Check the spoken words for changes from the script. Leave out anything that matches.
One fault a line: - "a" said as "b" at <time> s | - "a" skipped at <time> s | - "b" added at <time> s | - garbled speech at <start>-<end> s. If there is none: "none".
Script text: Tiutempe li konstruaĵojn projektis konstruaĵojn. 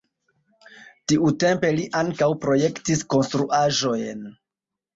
- "konstruaĵojn" said as "ankaŭ" at 2.0 s